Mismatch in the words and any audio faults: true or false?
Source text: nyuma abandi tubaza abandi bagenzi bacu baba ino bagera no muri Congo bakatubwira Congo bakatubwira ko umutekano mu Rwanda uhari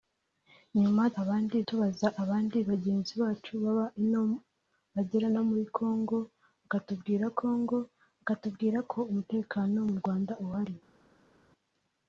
false